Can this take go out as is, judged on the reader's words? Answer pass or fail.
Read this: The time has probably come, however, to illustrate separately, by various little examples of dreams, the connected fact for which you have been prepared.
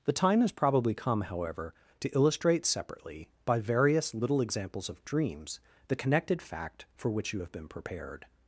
pass